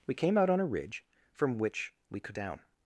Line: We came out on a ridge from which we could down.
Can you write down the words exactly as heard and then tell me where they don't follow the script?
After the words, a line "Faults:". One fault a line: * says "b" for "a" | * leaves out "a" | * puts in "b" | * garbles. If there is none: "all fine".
We came out on a ridge from which we could down.
Faults:
all fine